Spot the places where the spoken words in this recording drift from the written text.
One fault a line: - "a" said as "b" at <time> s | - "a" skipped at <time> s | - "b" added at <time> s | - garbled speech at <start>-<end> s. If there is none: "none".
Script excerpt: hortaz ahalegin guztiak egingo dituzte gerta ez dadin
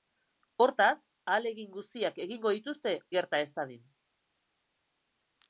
none